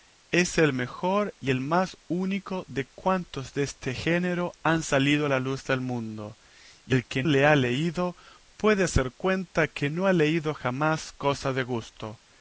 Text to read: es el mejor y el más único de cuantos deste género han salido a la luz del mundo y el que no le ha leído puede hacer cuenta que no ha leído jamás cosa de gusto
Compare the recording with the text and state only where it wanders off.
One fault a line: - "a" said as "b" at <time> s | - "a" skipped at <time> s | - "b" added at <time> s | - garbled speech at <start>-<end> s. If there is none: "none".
- "no" skipped at 7.2 s